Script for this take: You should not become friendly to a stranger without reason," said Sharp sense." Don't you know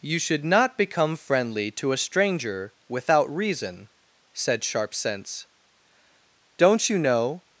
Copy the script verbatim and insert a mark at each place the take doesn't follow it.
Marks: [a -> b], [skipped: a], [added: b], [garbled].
You should not become friendly to a stranger without reason," said Sharp sense." Don't you know